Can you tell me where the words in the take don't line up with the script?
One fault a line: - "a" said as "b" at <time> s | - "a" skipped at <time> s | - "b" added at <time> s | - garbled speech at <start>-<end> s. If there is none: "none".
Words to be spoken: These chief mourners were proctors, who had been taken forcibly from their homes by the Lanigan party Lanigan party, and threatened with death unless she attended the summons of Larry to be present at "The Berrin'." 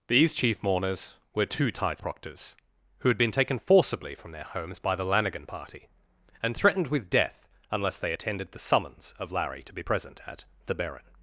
- "two tithe" added at 1.4 s
- "Lanigan party" skipped at 5.9 s
- "she" said as "they" at 8.0 s